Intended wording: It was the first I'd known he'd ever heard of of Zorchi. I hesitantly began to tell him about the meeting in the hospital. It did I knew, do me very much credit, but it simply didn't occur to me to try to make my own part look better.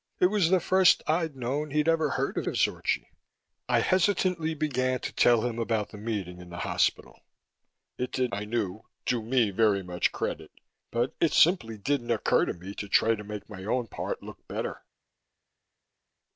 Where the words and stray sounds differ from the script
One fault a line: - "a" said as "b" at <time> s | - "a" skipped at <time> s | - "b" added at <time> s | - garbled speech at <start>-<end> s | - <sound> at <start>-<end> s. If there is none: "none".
none